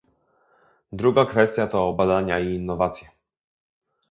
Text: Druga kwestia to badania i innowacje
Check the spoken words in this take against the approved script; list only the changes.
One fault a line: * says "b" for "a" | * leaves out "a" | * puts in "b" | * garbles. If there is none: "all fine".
all fine